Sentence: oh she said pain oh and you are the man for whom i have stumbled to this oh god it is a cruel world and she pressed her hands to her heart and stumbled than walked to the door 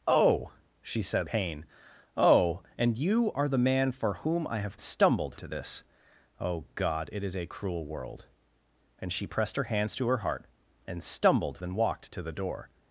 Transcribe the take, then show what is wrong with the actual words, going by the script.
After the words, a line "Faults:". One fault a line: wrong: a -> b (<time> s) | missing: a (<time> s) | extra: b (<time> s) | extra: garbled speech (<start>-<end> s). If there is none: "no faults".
oh she said pain oh and you are the man for whom i have stumbled to this oh god it is a cruel world and she pressed her hands to her heart and stumbled than walked to the door
Faults:
no faults